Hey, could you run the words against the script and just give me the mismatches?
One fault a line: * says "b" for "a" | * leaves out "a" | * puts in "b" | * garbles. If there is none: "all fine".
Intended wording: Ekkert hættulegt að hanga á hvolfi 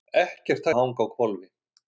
* leaves out "hættulegt"